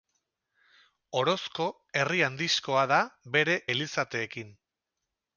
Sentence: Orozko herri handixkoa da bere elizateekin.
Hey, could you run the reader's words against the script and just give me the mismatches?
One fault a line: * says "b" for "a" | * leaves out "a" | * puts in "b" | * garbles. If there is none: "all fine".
all fine